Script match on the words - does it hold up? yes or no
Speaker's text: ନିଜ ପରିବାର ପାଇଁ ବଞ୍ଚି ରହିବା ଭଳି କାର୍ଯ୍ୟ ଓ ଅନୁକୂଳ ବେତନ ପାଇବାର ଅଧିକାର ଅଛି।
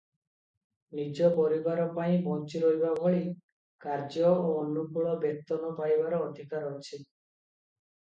yes